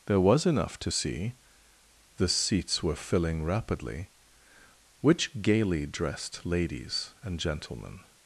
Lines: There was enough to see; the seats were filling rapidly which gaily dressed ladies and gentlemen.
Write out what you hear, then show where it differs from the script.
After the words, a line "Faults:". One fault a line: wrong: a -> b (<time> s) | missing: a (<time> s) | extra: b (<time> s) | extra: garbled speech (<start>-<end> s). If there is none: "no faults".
There was enough to see; the seats were filling rapidly which gaily dressed ladies and gentlemen.
Faults:
no faults